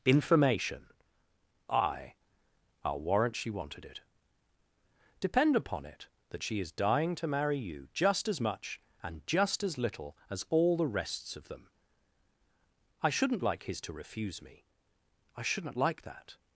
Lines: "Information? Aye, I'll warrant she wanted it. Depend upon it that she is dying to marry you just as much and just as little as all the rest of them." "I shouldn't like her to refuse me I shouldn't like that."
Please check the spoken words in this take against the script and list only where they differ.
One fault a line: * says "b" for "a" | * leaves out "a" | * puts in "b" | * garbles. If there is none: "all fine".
* says "rests" for "rest"
* says "his" for "her"